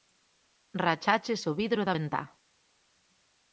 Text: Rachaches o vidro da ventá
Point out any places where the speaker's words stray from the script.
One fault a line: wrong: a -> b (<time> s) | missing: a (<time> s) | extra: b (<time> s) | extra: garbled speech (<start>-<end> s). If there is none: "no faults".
no faults